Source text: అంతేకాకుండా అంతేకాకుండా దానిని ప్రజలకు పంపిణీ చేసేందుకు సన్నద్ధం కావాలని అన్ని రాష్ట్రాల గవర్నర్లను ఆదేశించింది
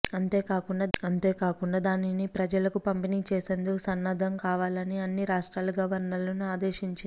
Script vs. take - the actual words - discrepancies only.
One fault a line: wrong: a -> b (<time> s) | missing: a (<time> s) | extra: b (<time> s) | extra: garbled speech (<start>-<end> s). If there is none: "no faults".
no faults